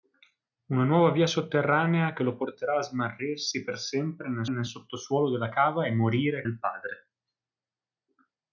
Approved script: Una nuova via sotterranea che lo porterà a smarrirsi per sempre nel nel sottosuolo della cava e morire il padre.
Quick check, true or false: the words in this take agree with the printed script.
true